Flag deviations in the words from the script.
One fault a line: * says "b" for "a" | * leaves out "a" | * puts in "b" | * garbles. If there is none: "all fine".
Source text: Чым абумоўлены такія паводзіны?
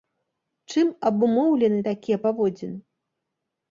all fine